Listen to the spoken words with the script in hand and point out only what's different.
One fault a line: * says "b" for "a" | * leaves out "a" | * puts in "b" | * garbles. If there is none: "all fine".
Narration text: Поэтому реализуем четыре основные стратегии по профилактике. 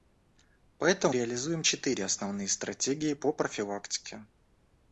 all fine